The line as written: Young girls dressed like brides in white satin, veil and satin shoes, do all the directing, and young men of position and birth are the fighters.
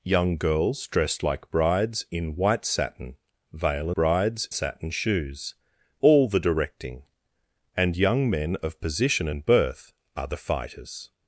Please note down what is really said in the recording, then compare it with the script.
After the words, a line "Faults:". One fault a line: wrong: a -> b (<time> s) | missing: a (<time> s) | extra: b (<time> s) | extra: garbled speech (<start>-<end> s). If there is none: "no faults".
Young girls dressed like brides in white satin, veil brides satin shoes, all the directing, and young men of position and birth are the fighters.
Faults:
wrong: and -> brides (3.9 s)
missing: do (5.5 s)